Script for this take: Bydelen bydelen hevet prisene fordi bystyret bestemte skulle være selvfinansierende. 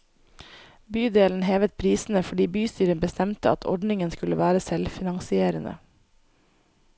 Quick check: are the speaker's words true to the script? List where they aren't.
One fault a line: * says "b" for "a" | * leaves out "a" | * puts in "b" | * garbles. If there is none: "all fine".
* leaves out "bydelen"
* puts in "at ordningen"